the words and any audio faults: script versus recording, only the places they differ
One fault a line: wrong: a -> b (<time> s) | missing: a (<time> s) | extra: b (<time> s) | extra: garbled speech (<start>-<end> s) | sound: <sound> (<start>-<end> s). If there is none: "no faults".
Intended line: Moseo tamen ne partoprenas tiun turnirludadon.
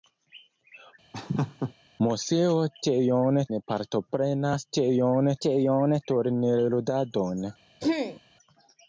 sound: laugh (1.1-1.7 s)
wrong: tamen -> tiun (2.9 s)
extra: tiun (5.5 s)
sound: throat clearing (7.8-8.2 s)